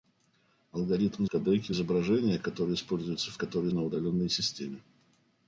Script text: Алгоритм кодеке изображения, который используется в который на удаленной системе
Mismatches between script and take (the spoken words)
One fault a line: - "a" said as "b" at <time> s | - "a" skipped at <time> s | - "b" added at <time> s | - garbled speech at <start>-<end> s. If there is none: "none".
none